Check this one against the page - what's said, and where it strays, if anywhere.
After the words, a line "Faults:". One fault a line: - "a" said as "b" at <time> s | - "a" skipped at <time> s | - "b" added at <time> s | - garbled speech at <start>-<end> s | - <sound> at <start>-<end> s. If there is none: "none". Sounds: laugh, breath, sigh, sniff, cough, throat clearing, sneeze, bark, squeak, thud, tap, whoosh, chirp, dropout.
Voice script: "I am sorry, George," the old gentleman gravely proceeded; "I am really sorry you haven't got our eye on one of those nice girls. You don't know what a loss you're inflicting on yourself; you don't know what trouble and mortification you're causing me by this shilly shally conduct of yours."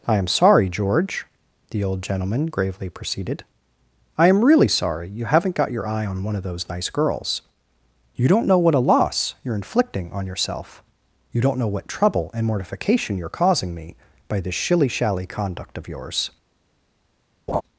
"I am sorry, George," the old gentleman gravely proceeded; "I am really sorry you haven't got your eye on one of those nice girls. You don't know what a loss you're inflicting on yourself; you don't know what trouble and mortification you're causing me by this shilly shally conduct of yours."
Faults:
- "our" said as "your" at 5.7 s
- laugh at 17.5-17.6 s